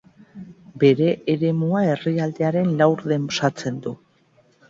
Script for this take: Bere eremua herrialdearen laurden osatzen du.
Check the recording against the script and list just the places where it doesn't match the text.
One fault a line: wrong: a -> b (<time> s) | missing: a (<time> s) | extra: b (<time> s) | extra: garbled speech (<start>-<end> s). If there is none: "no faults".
no faults